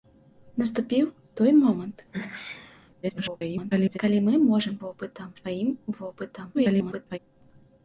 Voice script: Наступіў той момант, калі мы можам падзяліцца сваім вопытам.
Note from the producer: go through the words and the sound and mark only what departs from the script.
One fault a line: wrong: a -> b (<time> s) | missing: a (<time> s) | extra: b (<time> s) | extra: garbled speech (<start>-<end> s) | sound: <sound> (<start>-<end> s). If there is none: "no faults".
sound: sneeze (2.1-2.9 s)
extra: garbled speech (3.0-4.0 s)
wrong: падзяліцца -> вопытам (4.8 s)
extra: garbled speech (6.5-7.2 s)